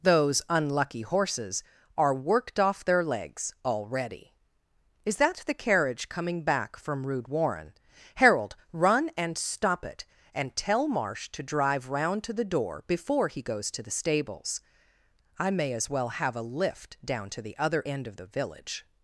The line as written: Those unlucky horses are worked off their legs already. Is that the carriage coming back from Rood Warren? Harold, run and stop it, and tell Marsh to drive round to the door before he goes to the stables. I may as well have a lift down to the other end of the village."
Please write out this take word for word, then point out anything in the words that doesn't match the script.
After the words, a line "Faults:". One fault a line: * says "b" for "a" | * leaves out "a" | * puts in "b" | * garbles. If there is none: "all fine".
Those unlucky horses are worked off their legs already. Is that the carriage coming back from Rood Warren? Harold, run and stop it, and tell Marsh to drive round to the door before he goes to the stables. I may as well have a lift down to the other end of the village."
Faults:
all fine